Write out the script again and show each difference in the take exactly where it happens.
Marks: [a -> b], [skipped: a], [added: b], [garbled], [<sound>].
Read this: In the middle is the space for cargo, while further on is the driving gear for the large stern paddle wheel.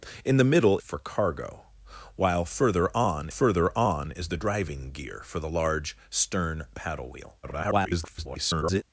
In the middle [skipped: is the space] for cargo, while further on [added: further on] is the driving gear for the large stern paddle wheel. [garbled]